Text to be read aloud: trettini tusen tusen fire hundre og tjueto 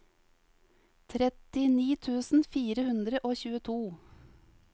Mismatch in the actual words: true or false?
true